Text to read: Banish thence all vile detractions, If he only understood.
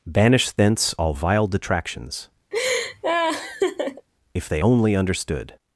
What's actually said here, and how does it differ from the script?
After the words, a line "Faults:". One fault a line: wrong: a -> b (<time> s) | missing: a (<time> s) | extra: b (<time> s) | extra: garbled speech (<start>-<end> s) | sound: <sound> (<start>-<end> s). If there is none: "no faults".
Banish thence all vile detractions, If they only understood.
Faults:
sound: laugh (2.5-4.1 s)
wrong: he -> they (4.5 s)